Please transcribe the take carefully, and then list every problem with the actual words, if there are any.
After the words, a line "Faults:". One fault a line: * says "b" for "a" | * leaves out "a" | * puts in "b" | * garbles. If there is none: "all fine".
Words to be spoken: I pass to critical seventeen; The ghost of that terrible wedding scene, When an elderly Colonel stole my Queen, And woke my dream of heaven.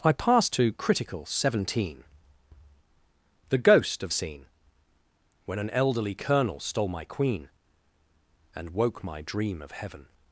I pass to critical seventeen; The ghost of scene, When an elderly Colonel stole my Queen, And woke my dream of heaven.
Faults:
* leaves out "that terrible wedding"